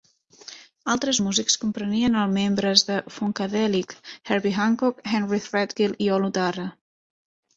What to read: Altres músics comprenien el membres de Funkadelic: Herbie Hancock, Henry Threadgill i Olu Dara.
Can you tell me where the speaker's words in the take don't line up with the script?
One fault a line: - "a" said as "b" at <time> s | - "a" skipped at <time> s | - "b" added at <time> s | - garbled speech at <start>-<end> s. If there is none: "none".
none